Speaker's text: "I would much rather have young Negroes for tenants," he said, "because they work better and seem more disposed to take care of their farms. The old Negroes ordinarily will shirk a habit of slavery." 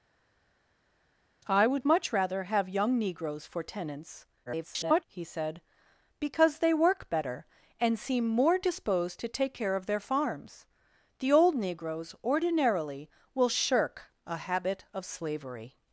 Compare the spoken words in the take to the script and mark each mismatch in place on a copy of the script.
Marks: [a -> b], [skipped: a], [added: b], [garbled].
"I would much rather have young Negroes for tenants," [garbled] he said, "because they work better and seem more disposed to take care of their farms. The old Negroes ordinarily will shirk a habit of slavery."